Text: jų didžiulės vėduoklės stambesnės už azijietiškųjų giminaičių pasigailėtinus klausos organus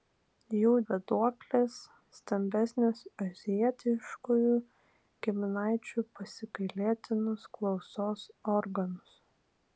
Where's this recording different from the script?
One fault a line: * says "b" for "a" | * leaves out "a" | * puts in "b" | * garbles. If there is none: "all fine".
* leaves out "didžiulės"
* leaves out "už"